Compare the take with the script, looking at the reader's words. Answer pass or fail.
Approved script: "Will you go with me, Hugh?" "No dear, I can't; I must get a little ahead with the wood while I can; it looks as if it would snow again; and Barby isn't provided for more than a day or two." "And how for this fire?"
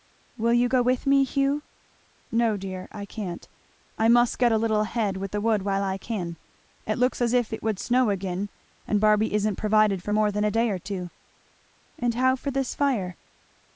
pass